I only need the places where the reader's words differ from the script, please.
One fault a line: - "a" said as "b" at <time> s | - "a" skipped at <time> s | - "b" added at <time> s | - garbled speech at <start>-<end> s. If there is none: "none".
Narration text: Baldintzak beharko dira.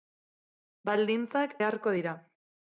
none